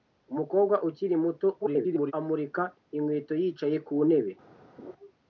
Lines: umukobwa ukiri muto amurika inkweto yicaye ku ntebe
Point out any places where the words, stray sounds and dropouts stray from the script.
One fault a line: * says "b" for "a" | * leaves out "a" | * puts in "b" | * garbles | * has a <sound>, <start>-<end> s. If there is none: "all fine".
* garbles
* has a laugh, 4.8-4.9 s